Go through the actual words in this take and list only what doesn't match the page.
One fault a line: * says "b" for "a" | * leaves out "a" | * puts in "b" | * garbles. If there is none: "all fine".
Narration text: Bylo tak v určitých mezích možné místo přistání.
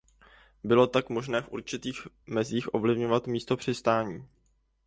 * puts in "možné"
* says "ovlivňovat" for "možné"